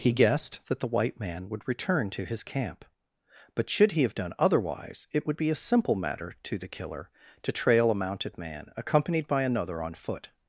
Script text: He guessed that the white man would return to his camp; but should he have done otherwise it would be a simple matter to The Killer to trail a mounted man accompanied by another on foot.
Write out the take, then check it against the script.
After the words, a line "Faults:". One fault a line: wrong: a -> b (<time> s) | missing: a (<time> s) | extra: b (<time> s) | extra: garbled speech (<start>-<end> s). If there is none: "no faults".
He guessed that the white man would return to his camp; but should he have done otherwise it would be a simple matter to The Killer to trail a mounted man accompanied by another on foot.
Faults:
no faults